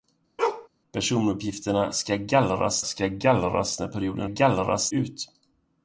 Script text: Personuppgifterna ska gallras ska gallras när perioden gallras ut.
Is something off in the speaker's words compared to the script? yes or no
no